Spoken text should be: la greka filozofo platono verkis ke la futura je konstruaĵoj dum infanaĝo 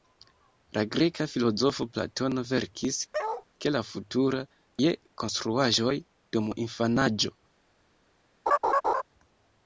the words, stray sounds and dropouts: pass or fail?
fail